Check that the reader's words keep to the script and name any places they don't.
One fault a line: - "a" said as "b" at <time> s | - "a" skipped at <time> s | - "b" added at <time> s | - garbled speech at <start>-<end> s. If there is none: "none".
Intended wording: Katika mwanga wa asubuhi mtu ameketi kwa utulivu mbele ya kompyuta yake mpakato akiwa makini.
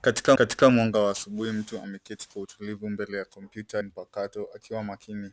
- "katika" added at 0.3 s
- "yake" skipped at 3.8 s